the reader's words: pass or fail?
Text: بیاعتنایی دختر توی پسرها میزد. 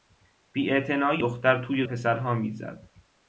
pass